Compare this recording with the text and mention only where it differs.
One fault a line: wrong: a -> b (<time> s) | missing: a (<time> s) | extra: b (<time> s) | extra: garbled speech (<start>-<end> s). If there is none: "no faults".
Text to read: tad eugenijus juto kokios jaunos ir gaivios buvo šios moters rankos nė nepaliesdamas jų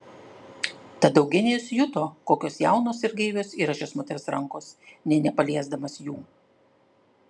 wrong: buvo -> yra (3.6 s)